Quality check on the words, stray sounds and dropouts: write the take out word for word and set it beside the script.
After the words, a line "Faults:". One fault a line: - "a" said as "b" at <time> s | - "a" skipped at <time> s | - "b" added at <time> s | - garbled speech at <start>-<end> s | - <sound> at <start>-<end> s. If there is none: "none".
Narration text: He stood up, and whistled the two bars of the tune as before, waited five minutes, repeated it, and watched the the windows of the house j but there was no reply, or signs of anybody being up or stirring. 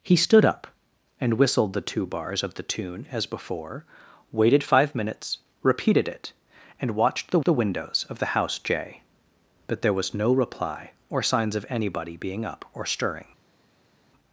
He stood up, and whistled the two bars of the tune as before, waited five minutes, repeated it, and watched the the windows of the house j but there was no reply, or signs of anybody being up or stirring.
Faults:
none